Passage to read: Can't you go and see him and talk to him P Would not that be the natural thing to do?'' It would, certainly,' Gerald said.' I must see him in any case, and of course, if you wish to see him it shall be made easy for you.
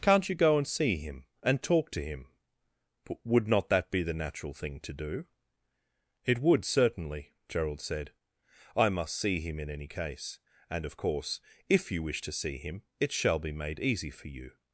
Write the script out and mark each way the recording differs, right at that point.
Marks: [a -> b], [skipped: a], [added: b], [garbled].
Can't you go and see him and talk to him P Would not that be the natural thing to do?'' It would, certainly,' Gerald said.' I must see him in any case, and of course, if you wish to see him it shall be made easy for you.